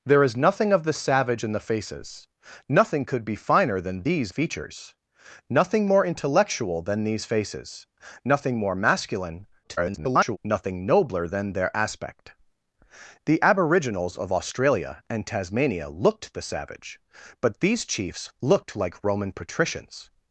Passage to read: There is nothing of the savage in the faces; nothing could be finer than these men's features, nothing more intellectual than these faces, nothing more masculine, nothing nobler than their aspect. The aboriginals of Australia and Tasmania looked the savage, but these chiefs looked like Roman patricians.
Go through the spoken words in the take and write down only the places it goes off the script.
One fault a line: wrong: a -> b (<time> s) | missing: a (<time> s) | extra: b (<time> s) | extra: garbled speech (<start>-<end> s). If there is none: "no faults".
missing: men's (4.3 s)
extra: garbled speech (9.6-10.4 s)